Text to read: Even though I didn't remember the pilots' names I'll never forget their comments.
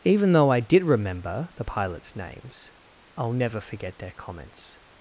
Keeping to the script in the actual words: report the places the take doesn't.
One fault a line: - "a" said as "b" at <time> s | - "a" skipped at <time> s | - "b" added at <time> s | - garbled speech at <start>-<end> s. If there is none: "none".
- "didn't" said as "did" at 0.6 s